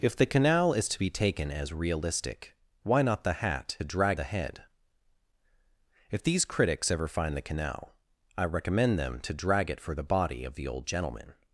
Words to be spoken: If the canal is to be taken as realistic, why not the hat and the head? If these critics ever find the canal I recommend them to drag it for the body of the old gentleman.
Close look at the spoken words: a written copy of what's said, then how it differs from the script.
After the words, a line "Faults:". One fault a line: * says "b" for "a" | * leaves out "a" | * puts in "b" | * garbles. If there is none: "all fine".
If the canal is to be taken as realistic, why not the hat drag the head? If these critics ever find the canal I recommend them to drag it for the body of the old gentleman.
Faults:
* says "drag" for "and"